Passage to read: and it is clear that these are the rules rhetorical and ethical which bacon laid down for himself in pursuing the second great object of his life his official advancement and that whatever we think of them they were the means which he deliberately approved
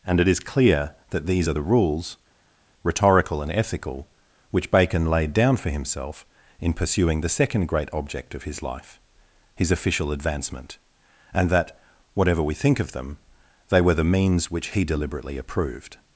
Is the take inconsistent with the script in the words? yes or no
no